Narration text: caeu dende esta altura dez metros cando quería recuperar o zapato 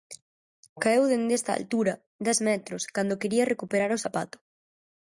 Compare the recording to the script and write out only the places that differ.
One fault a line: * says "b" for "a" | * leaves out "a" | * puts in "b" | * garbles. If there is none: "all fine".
all fine